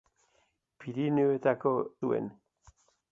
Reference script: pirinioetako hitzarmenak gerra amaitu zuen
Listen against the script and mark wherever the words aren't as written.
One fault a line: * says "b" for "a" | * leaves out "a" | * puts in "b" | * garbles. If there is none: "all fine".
* leaves out "hitzarmenak gerra amaitu"